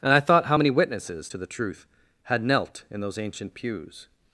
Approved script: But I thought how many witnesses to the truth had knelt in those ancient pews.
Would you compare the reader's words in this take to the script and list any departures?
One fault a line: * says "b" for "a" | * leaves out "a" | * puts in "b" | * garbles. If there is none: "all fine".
* says "And" for "But"